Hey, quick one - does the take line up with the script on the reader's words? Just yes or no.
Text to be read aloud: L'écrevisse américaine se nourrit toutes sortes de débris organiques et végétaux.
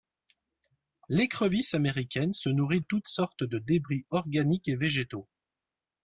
yes